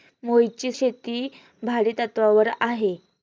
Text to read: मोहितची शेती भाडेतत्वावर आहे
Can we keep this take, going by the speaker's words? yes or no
yes